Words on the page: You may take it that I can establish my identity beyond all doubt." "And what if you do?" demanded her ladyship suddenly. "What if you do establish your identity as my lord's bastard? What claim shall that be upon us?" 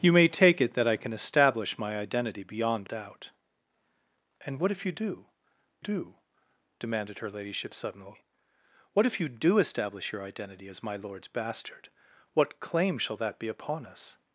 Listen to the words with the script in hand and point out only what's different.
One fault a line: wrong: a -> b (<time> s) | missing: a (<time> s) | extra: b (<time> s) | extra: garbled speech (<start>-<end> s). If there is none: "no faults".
missing: all (2.9 s)
extra: do (5.8 s)